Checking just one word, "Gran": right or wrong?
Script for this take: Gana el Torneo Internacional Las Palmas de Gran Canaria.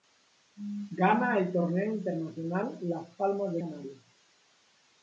wrong